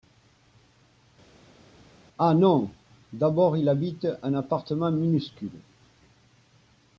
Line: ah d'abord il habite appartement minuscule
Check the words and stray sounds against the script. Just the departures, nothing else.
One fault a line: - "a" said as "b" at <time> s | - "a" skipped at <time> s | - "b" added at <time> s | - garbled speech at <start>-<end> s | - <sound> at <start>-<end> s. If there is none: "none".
- "non" added at 2.3 s
- "un" added at 4.2 s